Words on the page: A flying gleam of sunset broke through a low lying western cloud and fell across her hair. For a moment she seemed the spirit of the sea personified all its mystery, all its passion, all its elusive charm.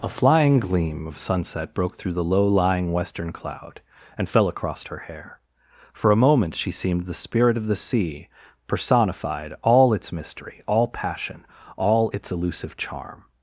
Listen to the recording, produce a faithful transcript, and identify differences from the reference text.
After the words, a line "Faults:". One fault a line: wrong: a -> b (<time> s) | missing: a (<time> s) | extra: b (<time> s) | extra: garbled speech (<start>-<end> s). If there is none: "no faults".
A flying gleam of sunset broke through the low lying western cloud and fell across her hair. For a moment she seemed the spirit of the sea personified all its mystery, all passion, all its elusive charm.
Faults:
wrong: a -> the (2.1 s)
missing: its (10.9 s)